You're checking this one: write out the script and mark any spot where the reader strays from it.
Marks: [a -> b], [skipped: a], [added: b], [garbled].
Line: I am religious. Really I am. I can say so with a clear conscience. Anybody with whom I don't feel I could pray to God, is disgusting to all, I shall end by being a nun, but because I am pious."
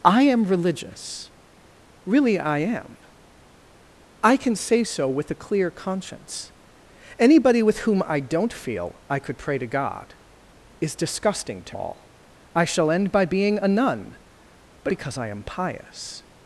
I am religious. Really I am. I can say so with a clear conscience. Anybody with whom I don't feel I could pray to God, is disgusting to all, I shall end by being a nun, but because I am pious."